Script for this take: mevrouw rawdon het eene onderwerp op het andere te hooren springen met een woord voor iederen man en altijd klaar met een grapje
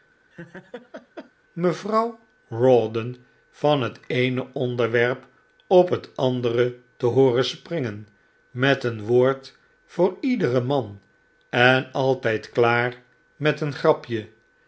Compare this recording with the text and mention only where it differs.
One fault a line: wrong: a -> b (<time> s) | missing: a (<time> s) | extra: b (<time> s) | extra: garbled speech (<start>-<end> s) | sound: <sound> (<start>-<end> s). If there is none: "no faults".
sound: laugh (0.3-1.3 s)
extra: van (3.5 s)